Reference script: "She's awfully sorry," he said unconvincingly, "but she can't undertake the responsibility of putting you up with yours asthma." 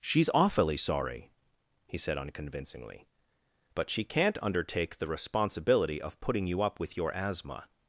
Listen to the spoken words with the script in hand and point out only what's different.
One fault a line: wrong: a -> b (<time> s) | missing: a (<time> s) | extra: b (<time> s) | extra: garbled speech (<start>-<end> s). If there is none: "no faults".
wrong: yours -> your (7.0 s)